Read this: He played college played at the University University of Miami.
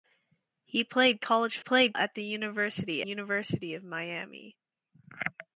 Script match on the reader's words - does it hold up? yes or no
yes